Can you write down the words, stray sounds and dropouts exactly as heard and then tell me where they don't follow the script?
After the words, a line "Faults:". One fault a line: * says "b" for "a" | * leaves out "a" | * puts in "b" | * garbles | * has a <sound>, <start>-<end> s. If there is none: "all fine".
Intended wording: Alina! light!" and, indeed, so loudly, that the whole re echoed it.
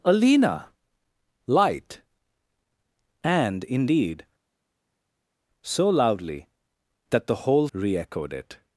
Alina! light!" and, indeed, so loudly, that the whole re echoed it.
Faults:
all fine